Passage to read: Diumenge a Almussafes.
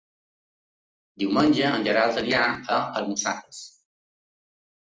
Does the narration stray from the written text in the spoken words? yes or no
yes